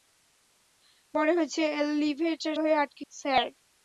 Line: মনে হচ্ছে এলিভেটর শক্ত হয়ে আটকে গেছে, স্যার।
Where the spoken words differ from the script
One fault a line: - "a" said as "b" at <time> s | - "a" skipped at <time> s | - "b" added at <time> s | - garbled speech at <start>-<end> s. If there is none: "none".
- "শক্ত" skipped at 2.5 s
- "গেছে" skipped at 3.0 s